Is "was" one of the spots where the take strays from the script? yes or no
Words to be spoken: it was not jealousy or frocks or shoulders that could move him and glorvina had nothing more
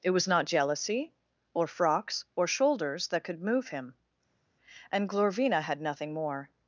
no